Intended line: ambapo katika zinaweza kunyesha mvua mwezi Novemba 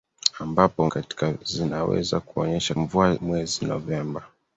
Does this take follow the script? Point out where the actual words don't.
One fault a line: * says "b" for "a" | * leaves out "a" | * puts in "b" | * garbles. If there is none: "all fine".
all fine